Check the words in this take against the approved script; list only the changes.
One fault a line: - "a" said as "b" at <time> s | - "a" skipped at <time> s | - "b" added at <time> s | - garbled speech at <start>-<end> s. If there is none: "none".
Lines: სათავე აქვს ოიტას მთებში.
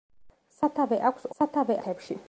- "ოიტას" said as "სათავე" at 1.4 s